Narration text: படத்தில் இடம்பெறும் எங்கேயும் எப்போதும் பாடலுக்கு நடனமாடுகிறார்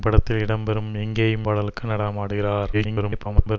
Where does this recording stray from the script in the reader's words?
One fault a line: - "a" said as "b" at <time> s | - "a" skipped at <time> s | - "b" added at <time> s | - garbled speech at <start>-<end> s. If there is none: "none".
- "எப்போதும்" skipped at 1.5 s
- garbled speech at 2.7-3.6 s